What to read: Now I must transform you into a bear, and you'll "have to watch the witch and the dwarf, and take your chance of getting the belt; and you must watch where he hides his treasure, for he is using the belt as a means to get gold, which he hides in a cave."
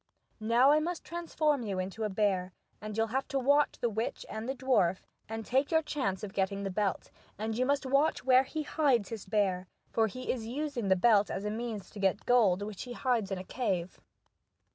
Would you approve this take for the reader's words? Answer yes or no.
no